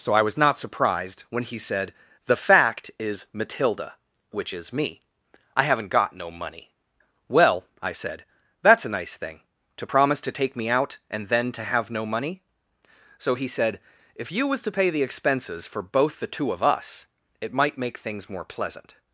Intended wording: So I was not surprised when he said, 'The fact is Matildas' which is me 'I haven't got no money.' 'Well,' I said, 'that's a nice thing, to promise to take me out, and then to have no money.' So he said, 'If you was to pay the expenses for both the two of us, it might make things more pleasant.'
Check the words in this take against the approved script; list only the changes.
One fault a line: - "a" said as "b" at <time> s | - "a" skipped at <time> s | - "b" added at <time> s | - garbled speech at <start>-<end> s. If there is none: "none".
- "Matildas" said as "Matilda" at 3.3 s